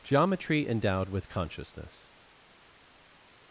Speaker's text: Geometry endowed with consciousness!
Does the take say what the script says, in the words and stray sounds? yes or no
yes